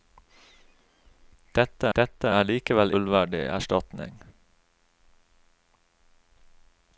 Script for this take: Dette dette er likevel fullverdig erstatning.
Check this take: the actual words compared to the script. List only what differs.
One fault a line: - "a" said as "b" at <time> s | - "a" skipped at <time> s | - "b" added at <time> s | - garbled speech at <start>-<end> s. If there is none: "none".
none